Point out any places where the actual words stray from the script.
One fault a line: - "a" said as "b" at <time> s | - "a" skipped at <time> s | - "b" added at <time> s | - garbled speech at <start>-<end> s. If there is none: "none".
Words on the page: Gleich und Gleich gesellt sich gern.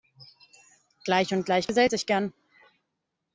none